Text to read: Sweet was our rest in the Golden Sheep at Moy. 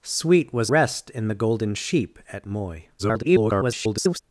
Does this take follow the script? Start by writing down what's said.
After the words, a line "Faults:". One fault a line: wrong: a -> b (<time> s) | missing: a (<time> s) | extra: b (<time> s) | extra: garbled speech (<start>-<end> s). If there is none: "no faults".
Sweet was rest in the Golden Sheep at Moy. [garbled]
Faults:
missing: our (0.7 s)
extra: garbled speech (3.0-4.2 s)